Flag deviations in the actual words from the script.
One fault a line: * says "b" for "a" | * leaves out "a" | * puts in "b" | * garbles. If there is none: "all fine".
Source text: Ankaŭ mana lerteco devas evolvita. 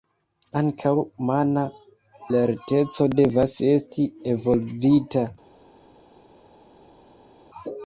* puts in "esti"